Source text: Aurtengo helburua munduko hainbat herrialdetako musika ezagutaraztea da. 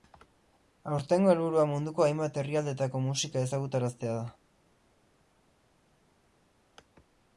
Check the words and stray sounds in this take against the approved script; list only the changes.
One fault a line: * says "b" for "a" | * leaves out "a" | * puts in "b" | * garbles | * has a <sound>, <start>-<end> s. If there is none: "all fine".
all fine